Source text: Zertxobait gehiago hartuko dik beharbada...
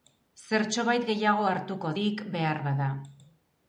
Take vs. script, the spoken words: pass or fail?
pass